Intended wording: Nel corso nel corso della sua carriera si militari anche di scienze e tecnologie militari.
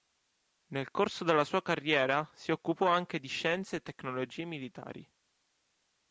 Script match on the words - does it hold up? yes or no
no